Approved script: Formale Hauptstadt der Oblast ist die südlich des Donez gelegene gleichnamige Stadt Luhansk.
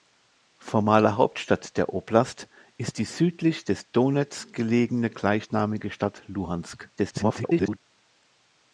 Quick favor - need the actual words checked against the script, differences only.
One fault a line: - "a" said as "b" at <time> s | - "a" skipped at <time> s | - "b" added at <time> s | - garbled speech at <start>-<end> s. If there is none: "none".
- garbled speech at 7.0-7.8 s